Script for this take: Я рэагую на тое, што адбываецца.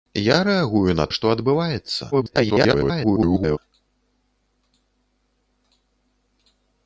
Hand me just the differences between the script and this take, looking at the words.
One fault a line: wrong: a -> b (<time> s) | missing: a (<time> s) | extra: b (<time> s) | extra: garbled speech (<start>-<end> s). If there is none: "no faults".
missing: тое (1.1 s)
extra: garbled speech (2.1-3.6 s)